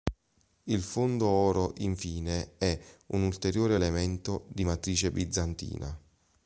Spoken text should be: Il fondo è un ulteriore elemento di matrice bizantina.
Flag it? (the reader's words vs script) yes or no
yes